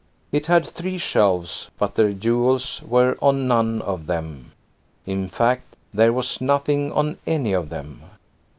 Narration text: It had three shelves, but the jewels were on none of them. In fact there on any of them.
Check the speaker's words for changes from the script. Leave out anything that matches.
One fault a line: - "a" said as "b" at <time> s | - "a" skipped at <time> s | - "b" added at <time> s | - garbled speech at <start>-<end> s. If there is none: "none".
- "was nothing" added at 6.1 s